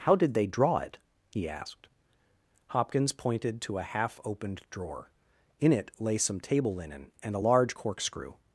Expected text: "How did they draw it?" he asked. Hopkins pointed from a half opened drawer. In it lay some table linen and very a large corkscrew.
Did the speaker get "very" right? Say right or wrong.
wrong